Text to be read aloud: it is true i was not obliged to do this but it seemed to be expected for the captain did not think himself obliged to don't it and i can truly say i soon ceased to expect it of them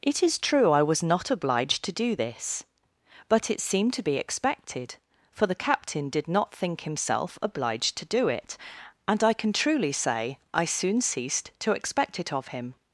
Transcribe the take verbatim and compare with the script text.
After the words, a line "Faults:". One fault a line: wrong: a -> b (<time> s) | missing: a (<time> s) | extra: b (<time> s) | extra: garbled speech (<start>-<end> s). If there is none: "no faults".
it is true i was not obliged to do this but it seemed to be expected for the captain did not think himself obliged to do it and i can truly say i soon ceased to expect it of him
Faults:
wrong: don't -> do (8.1 s)
wrong: them -> him (12.5 s)